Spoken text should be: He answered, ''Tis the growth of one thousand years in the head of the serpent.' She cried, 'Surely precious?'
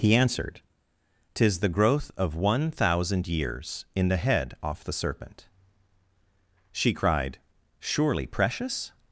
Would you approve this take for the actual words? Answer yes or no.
no